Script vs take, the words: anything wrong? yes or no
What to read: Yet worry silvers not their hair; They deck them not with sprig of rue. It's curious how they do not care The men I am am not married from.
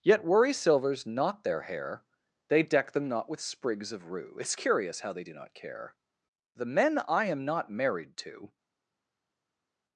yes